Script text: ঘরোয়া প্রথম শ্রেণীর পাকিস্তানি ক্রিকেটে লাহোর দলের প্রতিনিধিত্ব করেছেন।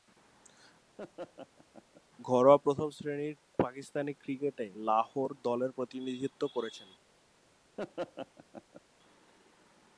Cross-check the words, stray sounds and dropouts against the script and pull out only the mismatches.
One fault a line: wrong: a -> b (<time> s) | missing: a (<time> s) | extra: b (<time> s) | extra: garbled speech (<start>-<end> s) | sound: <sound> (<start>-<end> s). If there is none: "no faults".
sound: laugh (1.0-2.0 s)
sound: laugh (7.8-8.8 s)